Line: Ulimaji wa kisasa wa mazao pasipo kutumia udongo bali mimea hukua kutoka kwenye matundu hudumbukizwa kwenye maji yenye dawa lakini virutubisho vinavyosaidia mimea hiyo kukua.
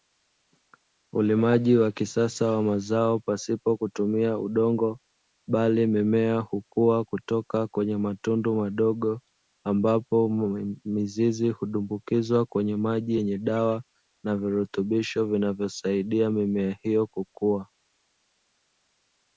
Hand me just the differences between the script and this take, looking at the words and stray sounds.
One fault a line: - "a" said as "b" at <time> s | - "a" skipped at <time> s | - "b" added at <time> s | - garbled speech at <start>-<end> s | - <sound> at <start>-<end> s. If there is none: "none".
- "madogo ambapo mizizi" added at 8.6 s
- "lakini" said as "na" at 14.2 s